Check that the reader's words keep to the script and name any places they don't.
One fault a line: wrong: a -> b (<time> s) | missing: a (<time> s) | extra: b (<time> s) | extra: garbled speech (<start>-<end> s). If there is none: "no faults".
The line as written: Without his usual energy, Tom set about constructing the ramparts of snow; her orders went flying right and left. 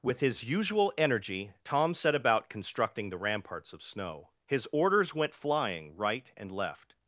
wrong: Without -> With (0.0 s)
wrong: her -> his (4.5 s)